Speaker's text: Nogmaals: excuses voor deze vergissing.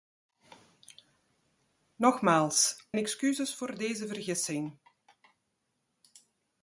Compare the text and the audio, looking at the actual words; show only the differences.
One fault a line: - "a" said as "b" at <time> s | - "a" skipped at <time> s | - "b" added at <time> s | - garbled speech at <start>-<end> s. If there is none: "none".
none